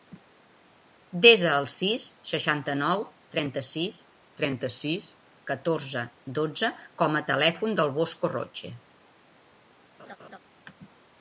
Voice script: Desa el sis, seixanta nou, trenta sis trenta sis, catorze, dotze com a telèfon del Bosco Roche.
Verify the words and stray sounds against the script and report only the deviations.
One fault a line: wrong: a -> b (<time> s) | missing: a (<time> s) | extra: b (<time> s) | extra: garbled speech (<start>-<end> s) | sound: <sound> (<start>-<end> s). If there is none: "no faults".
sound: laugh (10.0-10.4 s)